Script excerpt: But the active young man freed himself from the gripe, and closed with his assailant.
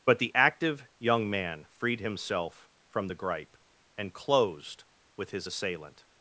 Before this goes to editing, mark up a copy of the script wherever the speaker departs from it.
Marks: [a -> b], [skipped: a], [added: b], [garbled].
But the active young man freed himself from the gripe, and closed with his assailant.